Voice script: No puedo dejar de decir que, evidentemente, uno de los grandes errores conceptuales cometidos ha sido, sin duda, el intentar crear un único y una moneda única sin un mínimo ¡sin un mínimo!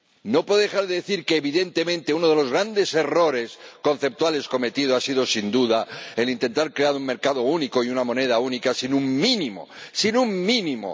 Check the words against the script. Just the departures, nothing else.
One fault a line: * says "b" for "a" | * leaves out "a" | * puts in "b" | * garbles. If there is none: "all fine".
* puts in "mercado"